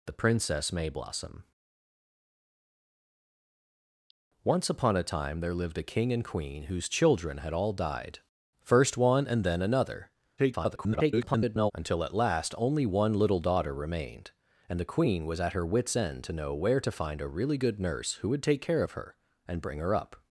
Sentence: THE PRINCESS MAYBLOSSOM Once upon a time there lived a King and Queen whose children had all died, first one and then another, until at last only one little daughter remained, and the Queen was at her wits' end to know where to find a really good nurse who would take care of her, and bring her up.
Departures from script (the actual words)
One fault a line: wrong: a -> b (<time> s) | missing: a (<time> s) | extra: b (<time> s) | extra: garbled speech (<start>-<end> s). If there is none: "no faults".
extra: garbled speech (10.4-11.7 s)